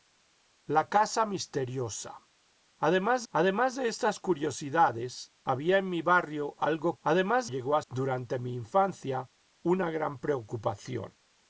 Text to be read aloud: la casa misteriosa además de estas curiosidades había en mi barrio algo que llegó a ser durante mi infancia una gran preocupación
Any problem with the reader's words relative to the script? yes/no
yes